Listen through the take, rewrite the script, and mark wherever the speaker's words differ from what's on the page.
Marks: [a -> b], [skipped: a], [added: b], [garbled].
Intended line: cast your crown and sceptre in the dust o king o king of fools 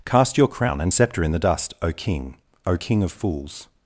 cast your crown and sceptre in the dust o king o king of fools